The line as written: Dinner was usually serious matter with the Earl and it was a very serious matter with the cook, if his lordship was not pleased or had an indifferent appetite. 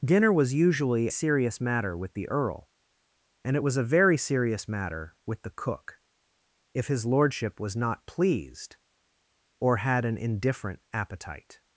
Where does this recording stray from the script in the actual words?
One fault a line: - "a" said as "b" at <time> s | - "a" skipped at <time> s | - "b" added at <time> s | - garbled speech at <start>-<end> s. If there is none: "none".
none